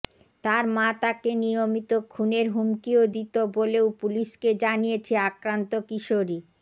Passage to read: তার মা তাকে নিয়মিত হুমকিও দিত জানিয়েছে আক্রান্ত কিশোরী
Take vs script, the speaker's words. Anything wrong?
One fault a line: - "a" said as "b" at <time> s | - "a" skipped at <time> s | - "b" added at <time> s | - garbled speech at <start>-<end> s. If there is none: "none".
- "খুনের" added at 2.1 s
- "বলেও পুলিশকে" added at 3.5 s